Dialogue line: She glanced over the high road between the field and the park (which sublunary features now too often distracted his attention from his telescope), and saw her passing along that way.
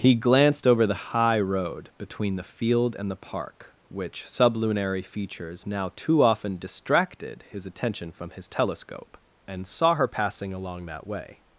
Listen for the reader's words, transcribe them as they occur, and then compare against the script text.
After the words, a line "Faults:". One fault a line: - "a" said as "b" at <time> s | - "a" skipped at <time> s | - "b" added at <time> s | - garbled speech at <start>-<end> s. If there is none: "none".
He glanced over the high road between the field and the park (which sublunary features now too often distracted his attention from his telescope), and saw her passing along that way.
Faults:
- "She" said as "He" at 0.0 s